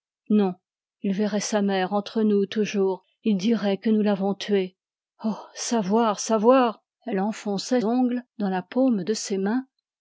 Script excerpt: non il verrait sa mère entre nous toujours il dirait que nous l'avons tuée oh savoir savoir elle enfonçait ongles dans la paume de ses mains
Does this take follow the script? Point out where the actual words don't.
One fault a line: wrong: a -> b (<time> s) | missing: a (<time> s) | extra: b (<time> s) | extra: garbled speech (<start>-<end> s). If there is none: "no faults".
no faults